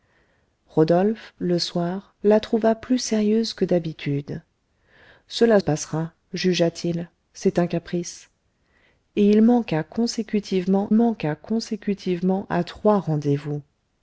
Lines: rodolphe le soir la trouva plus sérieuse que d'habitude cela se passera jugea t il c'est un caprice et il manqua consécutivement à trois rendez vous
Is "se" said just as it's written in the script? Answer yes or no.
no